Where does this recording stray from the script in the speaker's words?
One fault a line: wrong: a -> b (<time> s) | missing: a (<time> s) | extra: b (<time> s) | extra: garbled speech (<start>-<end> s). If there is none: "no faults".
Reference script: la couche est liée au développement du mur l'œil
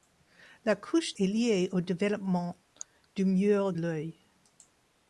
no faults